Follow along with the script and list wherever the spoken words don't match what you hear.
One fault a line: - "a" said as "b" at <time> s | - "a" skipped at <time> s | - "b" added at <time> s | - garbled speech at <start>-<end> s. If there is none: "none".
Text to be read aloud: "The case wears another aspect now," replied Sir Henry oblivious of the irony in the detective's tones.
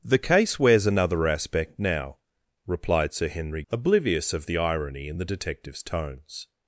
none